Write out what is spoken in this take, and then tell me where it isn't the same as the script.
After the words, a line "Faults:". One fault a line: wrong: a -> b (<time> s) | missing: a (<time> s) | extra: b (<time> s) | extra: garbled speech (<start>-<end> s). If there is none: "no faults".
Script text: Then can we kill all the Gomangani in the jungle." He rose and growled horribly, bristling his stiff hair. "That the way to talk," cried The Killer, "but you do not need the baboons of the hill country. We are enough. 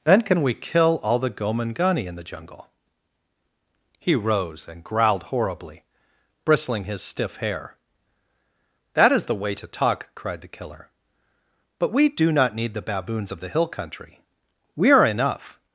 Then can we kill all the Gomangani in the jungle." He rose and growled horribly, bristling his stiff hair. "That is the way to talk," cried The Killer, "but we do not need the baboons of the hill country. We are enough.
Faults:
extra: is (9.1 s)
wrong: you -> we (11.9 s)